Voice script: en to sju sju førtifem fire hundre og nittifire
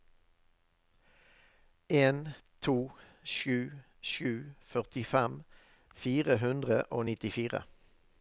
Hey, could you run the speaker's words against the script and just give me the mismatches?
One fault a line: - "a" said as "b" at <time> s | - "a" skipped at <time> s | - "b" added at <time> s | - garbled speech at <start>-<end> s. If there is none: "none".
none